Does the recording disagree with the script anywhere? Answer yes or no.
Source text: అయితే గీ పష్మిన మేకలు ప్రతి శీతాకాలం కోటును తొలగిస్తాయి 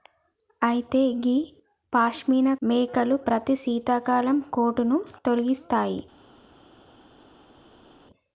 no